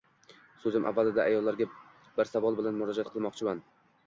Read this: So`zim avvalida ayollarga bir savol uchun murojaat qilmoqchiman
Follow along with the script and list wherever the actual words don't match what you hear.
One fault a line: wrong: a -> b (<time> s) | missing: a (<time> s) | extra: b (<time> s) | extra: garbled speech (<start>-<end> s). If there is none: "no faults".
wrong: uchun -> bilan (2.6 s)